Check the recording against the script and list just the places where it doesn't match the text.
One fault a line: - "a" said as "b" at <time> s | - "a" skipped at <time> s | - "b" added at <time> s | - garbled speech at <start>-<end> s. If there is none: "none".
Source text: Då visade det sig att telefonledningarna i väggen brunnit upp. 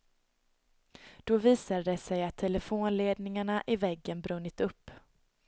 none